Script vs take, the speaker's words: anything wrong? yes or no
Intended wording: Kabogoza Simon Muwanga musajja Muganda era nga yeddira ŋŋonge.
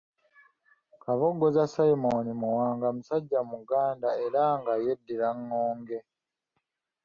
no